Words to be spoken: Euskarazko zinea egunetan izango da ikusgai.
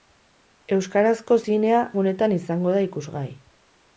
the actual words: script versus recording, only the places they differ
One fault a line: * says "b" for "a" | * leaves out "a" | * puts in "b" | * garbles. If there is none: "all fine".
all fine